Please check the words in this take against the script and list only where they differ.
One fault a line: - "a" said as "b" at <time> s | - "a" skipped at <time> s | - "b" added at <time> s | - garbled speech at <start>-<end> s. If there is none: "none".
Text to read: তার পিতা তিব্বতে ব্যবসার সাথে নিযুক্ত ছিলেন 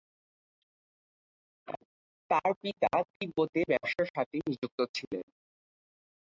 none